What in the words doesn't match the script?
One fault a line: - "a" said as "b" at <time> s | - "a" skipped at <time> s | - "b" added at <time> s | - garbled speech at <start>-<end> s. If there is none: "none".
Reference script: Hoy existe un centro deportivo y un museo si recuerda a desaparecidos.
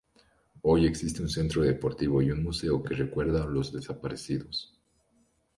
- "si" said as "que" at 2.8 s
- "los" added at 3.5 s